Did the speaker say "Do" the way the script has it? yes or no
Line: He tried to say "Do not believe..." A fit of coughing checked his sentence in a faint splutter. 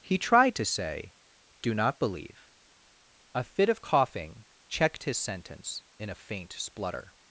yes